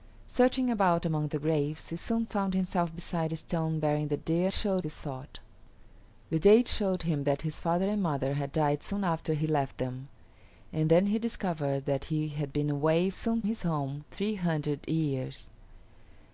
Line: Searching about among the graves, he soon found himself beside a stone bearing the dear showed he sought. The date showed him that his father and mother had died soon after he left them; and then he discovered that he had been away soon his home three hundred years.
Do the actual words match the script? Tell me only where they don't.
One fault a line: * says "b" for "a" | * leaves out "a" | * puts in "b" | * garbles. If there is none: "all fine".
all fine